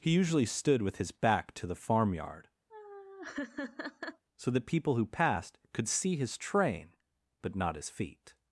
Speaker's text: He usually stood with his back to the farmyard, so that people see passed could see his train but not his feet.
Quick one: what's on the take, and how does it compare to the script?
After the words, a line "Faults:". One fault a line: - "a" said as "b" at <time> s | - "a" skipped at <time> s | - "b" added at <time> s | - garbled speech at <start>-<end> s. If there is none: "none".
He usually stood with his back to the farmyard, so that people who passed could see his train but not his feet.
Faults:
- "see" said as "who" at 5.0 s